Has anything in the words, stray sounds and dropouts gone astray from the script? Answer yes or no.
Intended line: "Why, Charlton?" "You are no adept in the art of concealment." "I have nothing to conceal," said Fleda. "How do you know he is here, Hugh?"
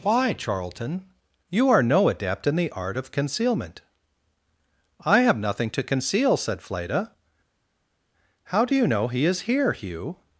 no